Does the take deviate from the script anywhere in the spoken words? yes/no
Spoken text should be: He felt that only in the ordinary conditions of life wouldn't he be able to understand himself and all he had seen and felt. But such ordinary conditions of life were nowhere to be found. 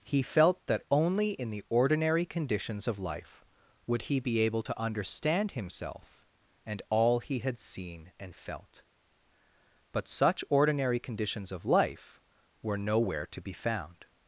yes